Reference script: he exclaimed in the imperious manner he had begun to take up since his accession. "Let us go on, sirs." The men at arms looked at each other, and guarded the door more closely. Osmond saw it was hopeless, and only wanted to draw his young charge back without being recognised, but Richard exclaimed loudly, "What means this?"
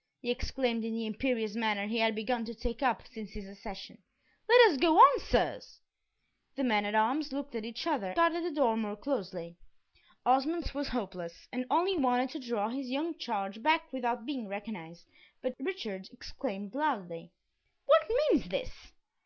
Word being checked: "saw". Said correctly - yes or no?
no